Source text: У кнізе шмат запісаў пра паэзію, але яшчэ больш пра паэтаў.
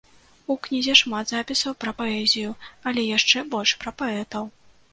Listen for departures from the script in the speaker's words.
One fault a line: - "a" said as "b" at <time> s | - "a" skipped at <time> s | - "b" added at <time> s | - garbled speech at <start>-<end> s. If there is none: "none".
none